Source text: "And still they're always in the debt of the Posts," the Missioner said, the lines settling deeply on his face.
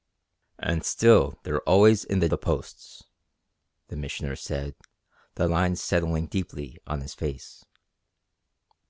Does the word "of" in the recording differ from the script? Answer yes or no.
yes